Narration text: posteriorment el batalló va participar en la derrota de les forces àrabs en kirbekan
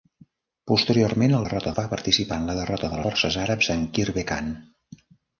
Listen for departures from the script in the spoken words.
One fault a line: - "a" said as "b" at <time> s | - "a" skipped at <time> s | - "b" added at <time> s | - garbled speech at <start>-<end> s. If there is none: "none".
- "batalló" said as "derrota" at 1.4 s
- "les" skipped at 3.0 s